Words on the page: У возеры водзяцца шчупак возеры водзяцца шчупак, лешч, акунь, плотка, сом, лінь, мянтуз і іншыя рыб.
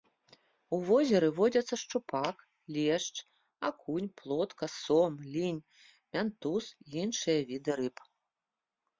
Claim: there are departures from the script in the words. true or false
true